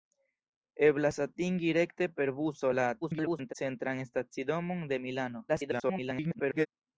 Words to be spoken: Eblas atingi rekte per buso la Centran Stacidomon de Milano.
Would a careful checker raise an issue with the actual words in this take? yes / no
yes